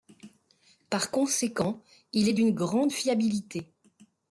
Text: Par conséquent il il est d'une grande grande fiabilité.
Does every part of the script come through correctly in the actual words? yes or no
no